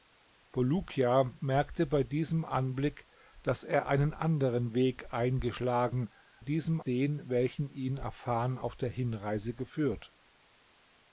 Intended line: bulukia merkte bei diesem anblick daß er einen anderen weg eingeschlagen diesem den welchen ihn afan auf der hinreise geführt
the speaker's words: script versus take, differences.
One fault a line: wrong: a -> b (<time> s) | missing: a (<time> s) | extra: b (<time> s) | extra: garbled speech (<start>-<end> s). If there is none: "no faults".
no faults